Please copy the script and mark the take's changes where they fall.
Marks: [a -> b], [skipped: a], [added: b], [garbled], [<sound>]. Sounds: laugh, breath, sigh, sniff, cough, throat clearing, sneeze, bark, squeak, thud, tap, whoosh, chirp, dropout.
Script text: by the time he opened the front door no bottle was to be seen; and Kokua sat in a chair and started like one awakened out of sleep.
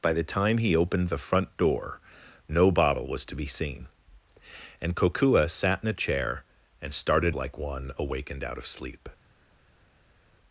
by the time he opened the front door no bottle was to be seen; and Kokua sat in a chair and started like one awakened out of sleep.